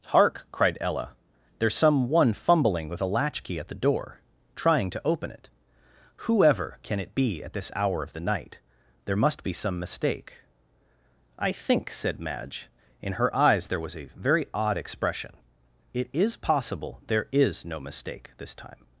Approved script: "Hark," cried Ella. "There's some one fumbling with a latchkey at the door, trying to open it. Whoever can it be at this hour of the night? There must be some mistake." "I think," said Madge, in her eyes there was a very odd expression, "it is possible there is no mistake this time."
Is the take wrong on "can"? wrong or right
right